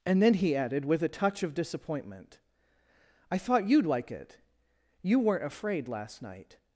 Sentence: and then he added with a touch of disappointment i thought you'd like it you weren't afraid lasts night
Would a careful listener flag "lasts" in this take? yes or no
yes